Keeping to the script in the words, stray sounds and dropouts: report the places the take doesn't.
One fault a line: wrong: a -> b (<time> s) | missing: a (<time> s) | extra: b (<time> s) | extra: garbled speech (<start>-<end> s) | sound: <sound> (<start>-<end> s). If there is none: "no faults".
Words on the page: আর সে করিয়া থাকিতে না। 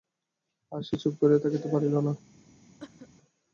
extra: চুপ (1.0 s)
extra: পারিল (1.7 s)
sound: cough (2.8-3.1 s)